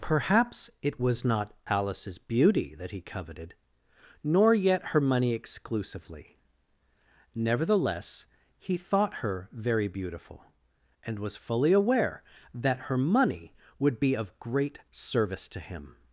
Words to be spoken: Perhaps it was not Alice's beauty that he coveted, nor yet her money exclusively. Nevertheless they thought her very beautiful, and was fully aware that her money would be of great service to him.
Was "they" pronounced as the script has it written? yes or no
no